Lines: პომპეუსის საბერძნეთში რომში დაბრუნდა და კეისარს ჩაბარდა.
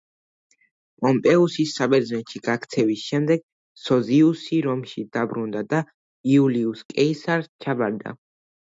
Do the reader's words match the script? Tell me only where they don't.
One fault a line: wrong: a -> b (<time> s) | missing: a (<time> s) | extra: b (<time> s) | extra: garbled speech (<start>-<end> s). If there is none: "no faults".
extra: გაქცევის შემდეგ სოზიუსი (2.5 s)
extra: იულიუს (6.3 s)